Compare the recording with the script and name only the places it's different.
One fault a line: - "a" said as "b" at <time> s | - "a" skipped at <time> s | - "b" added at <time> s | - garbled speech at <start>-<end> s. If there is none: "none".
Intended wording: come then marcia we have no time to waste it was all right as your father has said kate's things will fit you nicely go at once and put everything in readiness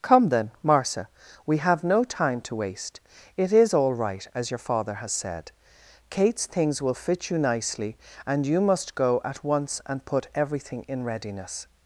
- "was" said as "is" at 3.5 s
- "and you must" added at 8.3 s